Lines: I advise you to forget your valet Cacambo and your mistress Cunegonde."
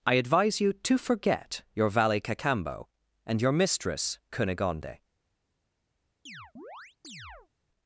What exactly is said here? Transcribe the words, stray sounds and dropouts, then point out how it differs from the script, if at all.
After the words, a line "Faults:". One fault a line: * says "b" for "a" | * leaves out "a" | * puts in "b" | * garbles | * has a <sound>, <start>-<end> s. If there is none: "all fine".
I advise you to forget your valet Cacambo and your mistress Cunegonde."
Faults:
* has a chirp, 6.3-7.5 s